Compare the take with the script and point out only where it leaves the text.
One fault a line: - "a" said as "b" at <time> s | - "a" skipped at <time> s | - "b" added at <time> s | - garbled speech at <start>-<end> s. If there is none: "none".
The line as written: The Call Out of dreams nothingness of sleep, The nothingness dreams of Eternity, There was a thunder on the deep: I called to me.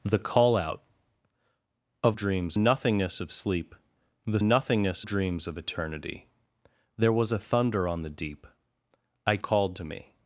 none